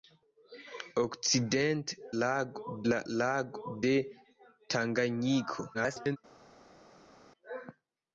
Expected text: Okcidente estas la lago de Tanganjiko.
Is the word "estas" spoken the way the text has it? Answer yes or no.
no